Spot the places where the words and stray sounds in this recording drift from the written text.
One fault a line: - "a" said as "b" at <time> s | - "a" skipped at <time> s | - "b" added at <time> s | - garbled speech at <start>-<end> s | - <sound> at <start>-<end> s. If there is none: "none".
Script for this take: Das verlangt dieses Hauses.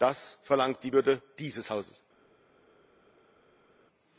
- "die Würde" added at 0.8 s